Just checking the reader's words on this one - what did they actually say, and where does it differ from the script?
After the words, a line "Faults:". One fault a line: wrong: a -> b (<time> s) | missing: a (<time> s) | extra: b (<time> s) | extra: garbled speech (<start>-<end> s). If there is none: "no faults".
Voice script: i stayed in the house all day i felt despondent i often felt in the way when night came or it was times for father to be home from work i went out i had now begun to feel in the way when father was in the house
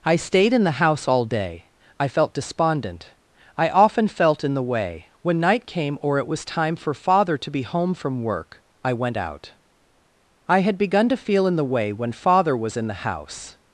i stayed in the house all day i felt despondent i often felt in the way when night came or it was time for father to be home from work i went out i had begun to feel in the way when father was in the house
Faults:
wrong: times -> time (6.5 s)
missing: now (10.8 s)